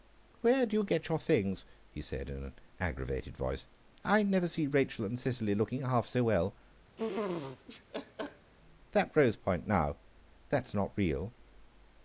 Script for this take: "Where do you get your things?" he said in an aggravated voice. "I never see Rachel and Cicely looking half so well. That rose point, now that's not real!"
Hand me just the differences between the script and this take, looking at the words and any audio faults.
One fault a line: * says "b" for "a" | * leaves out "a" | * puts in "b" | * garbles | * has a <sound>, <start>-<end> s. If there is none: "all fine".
* has a laugh, 7.0-8.5 s